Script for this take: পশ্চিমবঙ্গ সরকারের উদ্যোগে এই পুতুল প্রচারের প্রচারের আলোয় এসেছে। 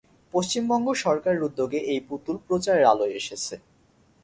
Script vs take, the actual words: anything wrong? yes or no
yes